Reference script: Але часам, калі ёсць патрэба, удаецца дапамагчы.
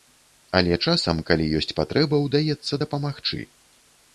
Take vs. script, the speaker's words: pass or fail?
pass